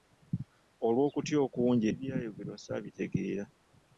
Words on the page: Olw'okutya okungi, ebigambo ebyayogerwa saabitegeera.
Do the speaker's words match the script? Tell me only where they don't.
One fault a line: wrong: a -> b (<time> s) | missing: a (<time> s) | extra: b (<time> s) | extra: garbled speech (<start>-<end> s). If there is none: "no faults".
missing: ebigambo (1.9 s)